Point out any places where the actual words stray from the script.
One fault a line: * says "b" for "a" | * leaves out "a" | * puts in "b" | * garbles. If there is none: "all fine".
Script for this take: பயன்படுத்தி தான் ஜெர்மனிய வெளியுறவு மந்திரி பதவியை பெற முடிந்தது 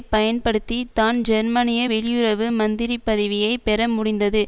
all fine